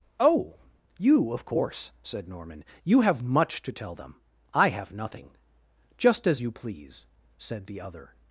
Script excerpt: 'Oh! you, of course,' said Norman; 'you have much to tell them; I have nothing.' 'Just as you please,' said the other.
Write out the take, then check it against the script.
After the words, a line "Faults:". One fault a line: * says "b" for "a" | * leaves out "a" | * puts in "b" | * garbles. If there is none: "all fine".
'Oh! you, of course,' said Norman; 'you have much to tell them; I have nothing.' 'Just as you please,' said the other.
Faults:
all fine